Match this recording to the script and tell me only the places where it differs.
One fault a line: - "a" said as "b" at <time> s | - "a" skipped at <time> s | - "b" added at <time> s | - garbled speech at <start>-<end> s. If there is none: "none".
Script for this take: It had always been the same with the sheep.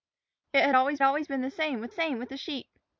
- "always" added at 1.0 s
- "same with" added at 1.9 s